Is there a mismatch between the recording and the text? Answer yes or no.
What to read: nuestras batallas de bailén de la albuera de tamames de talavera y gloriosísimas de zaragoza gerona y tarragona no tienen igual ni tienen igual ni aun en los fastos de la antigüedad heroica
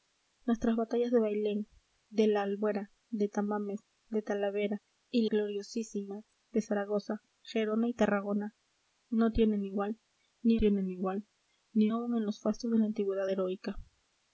no